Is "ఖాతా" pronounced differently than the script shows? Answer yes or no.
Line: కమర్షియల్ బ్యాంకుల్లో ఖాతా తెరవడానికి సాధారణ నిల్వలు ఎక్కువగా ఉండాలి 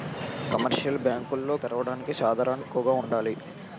yes